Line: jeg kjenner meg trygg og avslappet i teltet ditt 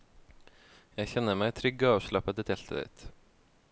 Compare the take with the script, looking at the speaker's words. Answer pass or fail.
pass